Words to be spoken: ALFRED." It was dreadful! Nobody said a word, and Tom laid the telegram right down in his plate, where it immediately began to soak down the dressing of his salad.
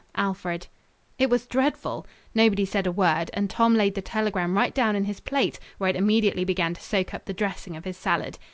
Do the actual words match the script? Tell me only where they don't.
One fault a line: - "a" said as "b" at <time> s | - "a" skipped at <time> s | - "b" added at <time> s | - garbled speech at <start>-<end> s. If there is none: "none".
- "down" said as "up" at 7.1 s